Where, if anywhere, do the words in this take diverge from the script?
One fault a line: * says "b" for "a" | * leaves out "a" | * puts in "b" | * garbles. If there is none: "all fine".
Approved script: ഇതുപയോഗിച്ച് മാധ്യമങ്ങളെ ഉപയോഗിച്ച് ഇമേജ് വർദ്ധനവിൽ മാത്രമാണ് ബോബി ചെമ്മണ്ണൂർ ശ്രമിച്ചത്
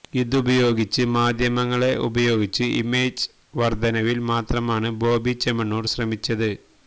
all fine